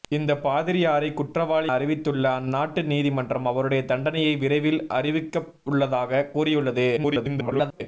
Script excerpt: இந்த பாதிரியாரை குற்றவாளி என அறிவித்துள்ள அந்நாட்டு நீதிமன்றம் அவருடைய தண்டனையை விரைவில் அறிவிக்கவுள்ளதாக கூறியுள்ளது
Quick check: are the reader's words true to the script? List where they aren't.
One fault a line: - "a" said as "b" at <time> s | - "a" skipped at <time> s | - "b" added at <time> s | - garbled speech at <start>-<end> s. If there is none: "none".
- "என" skipped at 1.7 s
- garbled speech at 7.0-7.8 s